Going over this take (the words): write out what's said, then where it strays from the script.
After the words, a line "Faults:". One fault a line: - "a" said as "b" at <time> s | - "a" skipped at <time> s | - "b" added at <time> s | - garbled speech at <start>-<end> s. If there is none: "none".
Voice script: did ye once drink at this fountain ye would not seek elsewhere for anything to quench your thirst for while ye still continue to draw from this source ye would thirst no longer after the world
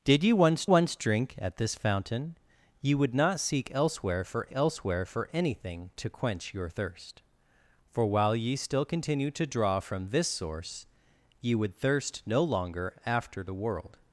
did ye once once drink at this fountain ye would not seek elsewhere for elsewhere for anything to quench your thirst for while ye still continue to draw from this source ye would thirst no longer after the world
Faults:
- "once" added at 0.6 s
- "elsewhere for" added at 4.5 s